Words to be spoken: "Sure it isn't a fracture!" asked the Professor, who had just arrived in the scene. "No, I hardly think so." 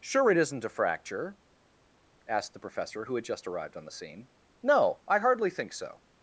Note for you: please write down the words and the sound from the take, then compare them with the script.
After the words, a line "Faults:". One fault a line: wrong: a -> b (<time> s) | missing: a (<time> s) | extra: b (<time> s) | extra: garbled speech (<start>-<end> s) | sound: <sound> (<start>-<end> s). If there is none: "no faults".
"Sure it isn't a fracture!" asked the Professor, who had just arrived on the scene. "No, I hardly think so."
Faults:
wrong: in -> on (3.7 s)